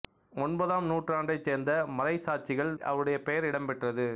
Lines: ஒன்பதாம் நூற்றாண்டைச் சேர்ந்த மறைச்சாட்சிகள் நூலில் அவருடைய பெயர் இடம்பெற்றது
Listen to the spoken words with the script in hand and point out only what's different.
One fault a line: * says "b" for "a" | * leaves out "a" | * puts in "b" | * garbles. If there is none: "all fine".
* leaves out "நூலில்"